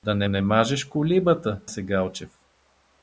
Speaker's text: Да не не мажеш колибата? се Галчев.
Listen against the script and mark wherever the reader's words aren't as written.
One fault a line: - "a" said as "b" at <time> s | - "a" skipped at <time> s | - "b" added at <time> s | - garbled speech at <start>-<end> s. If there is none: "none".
none